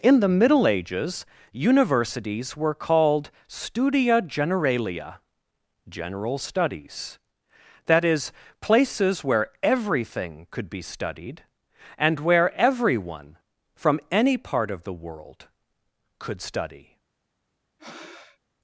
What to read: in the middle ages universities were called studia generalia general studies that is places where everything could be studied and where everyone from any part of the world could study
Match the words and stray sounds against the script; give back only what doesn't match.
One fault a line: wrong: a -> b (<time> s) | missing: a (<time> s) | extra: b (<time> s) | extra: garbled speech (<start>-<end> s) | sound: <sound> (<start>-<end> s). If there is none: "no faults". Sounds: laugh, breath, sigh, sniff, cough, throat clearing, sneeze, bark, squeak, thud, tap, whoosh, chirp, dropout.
sound: breath (17.8-18.4 s)